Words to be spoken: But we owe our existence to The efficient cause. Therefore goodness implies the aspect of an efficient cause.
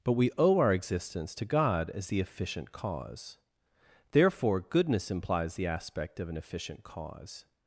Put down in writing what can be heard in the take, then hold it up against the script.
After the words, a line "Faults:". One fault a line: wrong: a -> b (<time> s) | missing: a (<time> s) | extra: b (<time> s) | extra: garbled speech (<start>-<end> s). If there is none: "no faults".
But we owe our existence to God as the efficient cause. Therefore goodness implies the aspect of an efficient cause.
Faults:
extra: God as (1.5 s)